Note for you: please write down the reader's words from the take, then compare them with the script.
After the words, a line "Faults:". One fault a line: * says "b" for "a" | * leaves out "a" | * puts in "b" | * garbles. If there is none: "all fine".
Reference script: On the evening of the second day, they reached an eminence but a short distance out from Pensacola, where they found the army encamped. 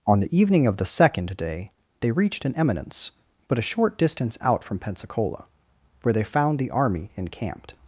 On the evening of the second day, they reached an eminence but a short distance out from Pensacola, where they found the army encamped.
Faults:
all fine